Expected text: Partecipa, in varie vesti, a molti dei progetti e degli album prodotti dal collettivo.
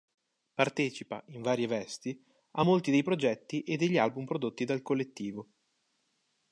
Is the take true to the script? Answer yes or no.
yes